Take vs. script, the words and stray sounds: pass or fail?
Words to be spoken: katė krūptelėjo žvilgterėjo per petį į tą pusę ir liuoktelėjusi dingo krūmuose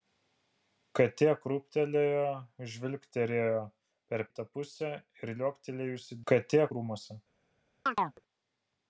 fail